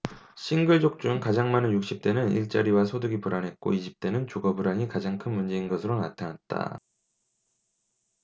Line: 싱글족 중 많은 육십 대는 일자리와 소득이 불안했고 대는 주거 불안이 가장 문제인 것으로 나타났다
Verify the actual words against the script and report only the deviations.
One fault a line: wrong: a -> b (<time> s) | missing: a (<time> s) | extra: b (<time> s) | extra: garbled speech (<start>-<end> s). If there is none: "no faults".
extra: 가장 (1.2 s)
extra: 이십 (3.7 s)
extra: 큰 (5.2 s)